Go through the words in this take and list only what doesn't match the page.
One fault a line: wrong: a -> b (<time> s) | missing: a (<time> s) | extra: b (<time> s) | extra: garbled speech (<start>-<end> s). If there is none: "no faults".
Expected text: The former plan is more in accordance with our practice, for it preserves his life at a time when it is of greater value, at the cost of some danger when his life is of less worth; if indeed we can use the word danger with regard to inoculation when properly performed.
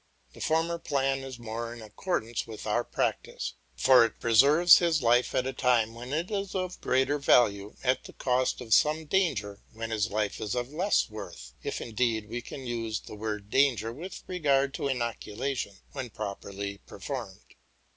no faults